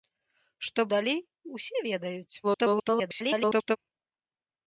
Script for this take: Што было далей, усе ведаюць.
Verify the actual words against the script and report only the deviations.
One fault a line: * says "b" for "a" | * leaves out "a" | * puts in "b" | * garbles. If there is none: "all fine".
* leaves out "было"
* garbles